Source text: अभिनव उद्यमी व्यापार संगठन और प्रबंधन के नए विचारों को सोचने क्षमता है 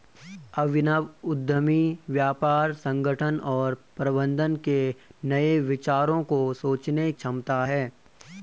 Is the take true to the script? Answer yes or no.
yes